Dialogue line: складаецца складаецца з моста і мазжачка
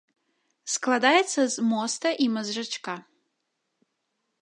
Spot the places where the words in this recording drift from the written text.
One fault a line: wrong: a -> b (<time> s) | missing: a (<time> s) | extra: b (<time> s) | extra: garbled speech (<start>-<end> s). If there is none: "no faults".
missing: складаецца (1.4 s)